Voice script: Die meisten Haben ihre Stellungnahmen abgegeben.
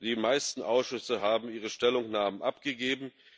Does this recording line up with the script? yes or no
no